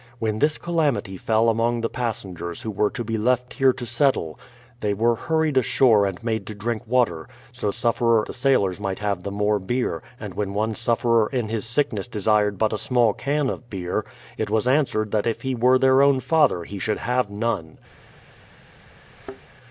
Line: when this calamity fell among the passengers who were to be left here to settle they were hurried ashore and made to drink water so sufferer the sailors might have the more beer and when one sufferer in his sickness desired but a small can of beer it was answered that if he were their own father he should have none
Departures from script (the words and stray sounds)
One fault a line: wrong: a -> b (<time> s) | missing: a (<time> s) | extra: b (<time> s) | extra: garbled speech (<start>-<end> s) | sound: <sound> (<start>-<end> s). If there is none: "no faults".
sound: thud (19.1-19.4 s)